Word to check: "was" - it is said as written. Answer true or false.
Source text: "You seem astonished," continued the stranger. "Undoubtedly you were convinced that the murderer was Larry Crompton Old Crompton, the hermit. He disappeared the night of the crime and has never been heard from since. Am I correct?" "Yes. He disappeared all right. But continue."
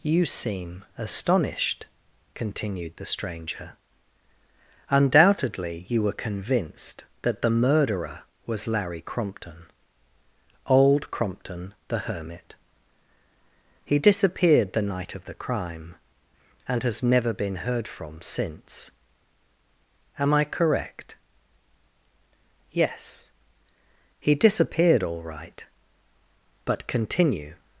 true